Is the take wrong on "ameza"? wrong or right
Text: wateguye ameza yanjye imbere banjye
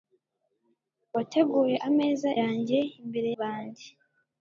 right